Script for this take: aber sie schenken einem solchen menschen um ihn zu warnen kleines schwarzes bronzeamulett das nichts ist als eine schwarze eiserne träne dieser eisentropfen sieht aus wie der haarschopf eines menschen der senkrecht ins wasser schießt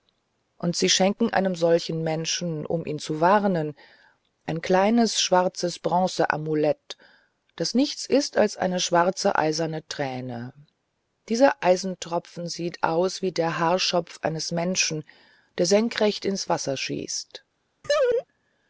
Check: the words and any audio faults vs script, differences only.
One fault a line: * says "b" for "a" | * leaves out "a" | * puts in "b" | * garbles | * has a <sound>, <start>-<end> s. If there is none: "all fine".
* says "und" for "aber"
* puts in "ein"
* has a laugh, 17.8-18.3 s